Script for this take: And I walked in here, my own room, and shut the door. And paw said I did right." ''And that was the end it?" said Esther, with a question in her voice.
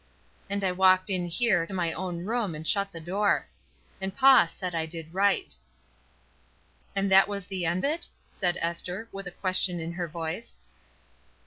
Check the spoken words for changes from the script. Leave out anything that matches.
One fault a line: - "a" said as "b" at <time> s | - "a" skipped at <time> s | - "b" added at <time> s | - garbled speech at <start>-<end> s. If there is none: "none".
none